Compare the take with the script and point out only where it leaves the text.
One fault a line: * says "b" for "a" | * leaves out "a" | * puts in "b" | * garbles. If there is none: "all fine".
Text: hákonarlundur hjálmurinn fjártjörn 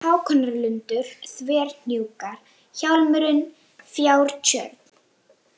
* puts in "þverhnjúkar"